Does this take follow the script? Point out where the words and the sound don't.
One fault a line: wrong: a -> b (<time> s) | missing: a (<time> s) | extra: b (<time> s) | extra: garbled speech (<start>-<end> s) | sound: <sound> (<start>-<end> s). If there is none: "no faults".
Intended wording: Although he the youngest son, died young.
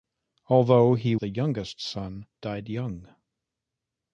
no faults